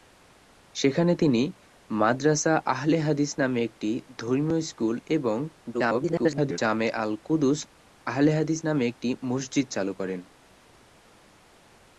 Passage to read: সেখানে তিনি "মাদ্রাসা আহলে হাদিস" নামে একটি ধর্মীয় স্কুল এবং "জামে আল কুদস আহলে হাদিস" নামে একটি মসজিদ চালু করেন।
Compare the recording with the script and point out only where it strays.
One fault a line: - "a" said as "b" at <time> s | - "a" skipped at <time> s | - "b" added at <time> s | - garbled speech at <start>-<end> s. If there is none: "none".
- garbled speech at 5.7-6.6 s